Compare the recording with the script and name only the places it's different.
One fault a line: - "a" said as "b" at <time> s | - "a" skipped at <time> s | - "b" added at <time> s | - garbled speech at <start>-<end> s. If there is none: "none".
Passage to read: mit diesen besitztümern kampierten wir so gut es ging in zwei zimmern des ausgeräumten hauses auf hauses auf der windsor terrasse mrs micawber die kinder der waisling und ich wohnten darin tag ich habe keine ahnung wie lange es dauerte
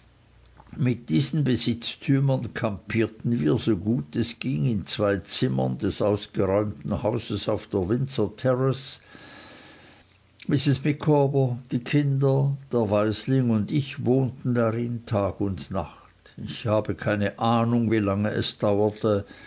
- "hauses auf" skipped at 7.7 s
- "und nacht" added at 15.4 s